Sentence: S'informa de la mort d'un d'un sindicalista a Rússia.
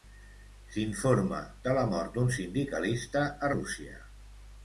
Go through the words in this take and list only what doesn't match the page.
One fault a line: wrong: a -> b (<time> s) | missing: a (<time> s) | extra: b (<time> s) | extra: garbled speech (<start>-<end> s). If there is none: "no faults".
missing: d'un (2.3 s)